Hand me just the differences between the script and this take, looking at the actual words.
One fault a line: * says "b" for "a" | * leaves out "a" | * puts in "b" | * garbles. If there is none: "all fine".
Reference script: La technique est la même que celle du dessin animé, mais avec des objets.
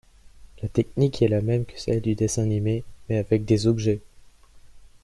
all fine